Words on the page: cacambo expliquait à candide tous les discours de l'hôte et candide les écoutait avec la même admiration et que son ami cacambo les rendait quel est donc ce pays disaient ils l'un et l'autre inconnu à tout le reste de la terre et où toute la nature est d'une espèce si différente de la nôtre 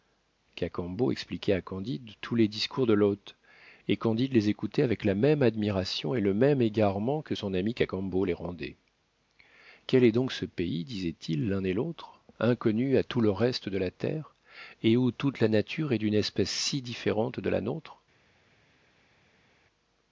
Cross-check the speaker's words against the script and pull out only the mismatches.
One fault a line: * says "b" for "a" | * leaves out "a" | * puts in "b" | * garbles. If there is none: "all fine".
* puts in "le même égarement"